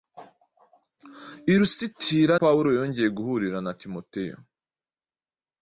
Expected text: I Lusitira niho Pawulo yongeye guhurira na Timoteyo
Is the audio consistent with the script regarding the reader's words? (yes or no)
no